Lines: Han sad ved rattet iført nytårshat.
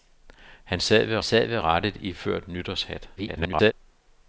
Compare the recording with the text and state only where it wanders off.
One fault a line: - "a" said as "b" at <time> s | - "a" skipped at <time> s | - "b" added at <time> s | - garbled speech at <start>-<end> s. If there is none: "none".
- "sad ved" added at 1.2 s
- garbled speech at 3.2-3.7 s